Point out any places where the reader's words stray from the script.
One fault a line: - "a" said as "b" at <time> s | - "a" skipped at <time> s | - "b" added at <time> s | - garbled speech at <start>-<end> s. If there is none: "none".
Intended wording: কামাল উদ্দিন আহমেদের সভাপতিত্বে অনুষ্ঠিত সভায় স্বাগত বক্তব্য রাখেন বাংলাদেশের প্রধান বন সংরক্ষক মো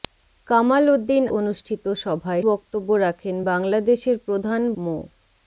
- "আহমেদের সভাপতিত্বে" skipped at 1.2 s
- "স্বাগত" skipped at 2.4 s
- "বন সংরক্ষক" skipped at 4.6 s